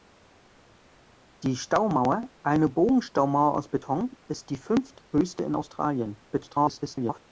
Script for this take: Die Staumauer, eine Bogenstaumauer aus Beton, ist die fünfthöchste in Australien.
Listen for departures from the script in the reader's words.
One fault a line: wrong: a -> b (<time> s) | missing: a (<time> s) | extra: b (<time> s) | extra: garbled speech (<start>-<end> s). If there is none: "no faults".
extra: garbled speech (6.3-7.2 s)